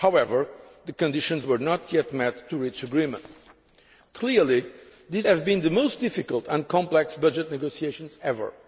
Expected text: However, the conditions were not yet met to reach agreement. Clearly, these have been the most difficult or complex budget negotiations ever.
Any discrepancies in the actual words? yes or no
yes